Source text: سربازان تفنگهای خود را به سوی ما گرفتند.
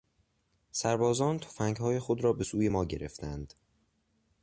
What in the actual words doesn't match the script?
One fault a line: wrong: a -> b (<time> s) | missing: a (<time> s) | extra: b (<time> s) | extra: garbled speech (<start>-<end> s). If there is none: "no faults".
no faults